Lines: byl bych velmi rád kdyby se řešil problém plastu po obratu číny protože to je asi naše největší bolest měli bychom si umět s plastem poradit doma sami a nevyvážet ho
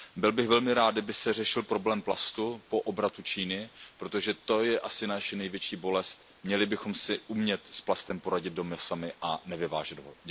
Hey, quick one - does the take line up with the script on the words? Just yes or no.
yes